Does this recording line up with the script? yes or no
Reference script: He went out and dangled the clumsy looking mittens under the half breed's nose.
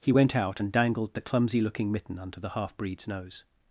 no